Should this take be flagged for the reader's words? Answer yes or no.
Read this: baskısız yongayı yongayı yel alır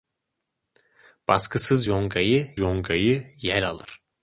no